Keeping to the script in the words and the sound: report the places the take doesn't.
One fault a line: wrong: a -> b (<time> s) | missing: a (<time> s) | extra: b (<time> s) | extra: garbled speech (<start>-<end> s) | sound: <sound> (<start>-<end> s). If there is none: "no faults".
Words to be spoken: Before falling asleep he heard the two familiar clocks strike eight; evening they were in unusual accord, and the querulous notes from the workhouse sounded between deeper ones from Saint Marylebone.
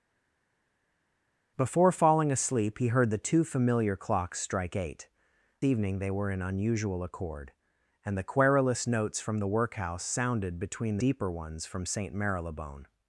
no faults